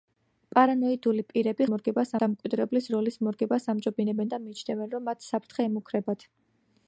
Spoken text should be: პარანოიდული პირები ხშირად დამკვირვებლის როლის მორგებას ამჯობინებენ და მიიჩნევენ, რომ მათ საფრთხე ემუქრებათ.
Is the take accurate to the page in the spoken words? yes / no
no